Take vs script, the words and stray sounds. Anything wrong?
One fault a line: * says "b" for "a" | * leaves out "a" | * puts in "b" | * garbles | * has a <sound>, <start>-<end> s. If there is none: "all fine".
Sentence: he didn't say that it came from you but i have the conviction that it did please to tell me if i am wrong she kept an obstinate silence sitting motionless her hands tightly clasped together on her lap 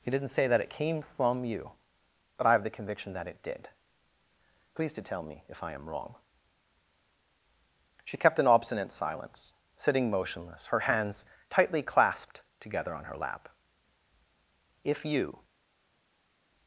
* puts in "if you"